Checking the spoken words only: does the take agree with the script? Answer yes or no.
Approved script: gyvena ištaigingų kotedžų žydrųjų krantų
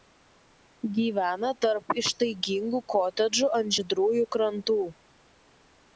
no